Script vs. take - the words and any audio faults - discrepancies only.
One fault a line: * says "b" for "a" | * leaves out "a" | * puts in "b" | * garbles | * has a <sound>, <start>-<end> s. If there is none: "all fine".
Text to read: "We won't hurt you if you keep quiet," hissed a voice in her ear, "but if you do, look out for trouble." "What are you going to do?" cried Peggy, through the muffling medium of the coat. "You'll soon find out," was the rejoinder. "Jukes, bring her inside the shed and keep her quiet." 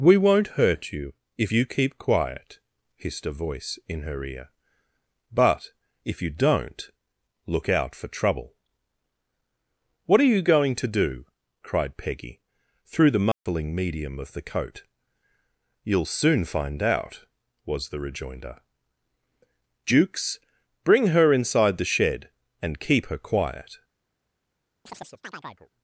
* says "don't" for "do"
* has a dropout, 13.3-13.5 s
* has a chirp, 24.9-25.7 s